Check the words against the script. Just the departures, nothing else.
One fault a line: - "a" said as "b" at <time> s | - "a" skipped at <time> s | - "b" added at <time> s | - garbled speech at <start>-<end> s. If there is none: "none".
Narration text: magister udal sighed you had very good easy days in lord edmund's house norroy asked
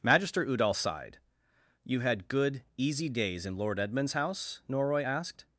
- "very" skipped at 2.3 s